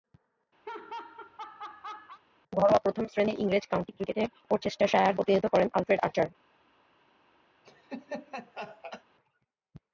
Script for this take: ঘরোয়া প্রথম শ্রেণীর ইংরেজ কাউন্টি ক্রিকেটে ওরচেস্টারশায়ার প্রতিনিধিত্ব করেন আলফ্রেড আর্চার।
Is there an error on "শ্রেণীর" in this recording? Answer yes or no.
no